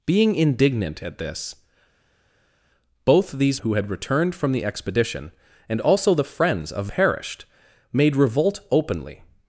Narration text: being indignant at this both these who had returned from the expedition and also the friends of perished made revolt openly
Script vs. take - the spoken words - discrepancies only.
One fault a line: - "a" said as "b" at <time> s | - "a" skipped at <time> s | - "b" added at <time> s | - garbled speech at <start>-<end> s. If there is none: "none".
none